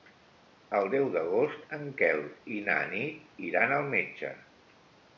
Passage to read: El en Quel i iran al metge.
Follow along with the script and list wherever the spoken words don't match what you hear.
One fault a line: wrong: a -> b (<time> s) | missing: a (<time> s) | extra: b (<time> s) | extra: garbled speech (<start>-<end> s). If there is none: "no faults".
extra: deu d'agost (0.9 s)
extra: na Nit (2.7 s)